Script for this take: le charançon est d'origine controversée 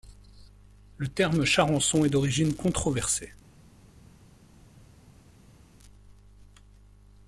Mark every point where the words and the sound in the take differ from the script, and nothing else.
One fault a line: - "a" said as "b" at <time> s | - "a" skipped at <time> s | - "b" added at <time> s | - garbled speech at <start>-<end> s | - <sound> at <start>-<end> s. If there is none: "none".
- "terme" added at 1.1 s